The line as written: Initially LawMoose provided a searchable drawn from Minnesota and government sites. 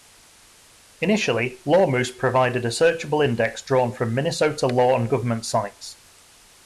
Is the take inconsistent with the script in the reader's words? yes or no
yes